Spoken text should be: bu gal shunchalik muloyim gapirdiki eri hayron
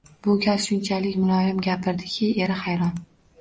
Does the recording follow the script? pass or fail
pass